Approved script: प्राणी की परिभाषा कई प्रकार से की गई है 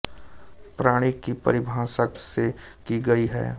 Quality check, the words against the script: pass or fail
fail